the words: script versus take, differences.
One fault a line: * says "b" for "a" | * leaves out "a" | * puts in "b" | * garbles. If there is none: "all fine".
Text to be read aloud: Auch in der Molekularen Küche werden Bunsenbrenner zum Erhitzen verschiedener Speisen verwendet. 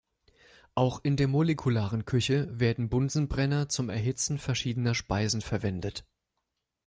all fine